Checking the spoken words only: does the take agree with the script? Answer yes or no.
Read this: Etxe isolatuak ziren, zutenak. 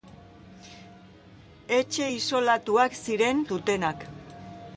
yes